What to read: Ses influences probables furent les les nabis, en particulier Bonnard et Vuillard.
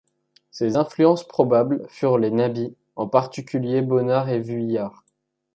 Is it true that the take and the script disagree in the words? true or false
true